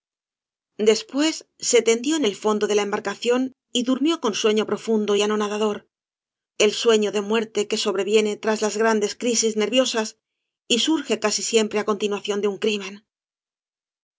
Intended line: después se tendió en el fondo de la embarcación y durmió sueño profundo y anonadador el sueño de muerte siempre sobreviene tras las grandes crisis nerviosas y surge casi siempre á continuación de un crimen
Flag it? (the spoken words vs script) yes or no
yes